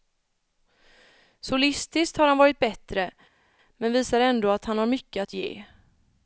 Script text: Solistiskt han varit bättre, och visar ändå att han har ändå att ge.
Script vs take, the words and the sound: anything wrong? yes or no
yes